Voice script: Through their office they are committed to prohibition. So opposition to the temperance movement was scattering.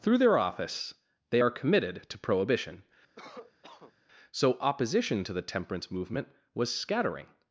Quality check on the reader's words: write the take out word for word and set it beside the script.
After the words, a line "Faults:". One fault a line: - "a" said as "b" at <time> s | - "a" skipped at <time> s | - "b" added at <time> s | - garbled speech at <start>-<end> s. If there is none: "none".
Through their office they are committed to prohibition. So opposition to the temperance movement was scattering.
Faults:
none